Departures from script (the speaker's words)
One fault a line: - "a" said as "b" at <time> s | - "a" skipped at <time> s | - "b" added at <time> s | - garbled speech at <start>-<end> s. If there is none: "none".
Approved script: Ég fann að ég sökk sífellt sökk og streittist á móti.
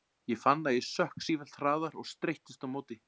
- "sökk" said as "hraðar" at 1.6 s